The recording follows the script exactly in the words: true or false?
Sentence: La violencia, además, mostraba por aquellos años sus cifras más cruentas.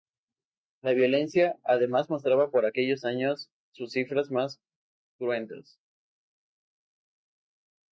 true